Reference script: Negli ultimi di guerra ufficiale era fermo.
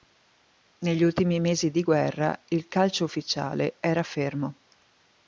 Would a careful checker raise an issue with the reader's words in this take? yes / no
yes